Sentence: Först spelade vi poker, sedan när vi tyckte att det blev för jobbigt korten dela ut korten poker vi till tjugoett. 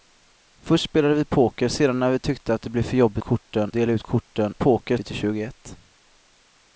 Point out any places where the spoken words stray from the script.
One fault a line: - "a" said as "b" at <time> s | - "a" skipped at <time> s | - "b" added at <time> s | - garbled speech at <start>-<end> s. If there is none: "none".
none